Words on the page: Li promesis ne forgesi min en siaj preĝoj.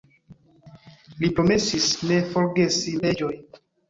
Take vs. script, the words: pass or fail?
fail